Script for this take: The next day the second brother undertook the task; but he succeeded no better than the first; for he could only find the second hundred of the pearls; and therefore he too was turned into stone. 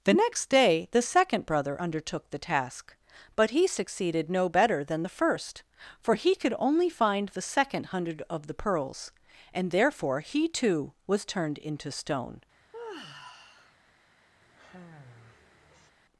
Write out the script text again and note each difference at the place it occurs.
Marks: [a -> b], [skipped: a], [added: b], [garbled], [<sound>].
The next day the second brother undertook the task; but he succeeded no better than the first; for he could only find the second hundred of the pearls; and therefore he too was turned into stone. [sigh] [sigh]